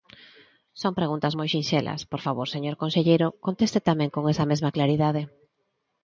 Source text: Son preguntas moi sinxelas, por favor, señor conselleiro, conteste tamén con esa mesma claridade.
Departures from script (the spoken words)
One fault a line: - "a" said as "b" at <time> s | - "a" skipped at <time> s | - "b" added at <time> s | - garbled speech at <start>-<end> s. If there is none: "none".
none